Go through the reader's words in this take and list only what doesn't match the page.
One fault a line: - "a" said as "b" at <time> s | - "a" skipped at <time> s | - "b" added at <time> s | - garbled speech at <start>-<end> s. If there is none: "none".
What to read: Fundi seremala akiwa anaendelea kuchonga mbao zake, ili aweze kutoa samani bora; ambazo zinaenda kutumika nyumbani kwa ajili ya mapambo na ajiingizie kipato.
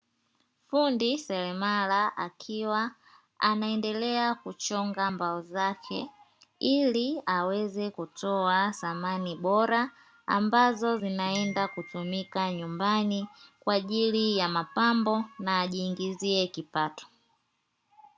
none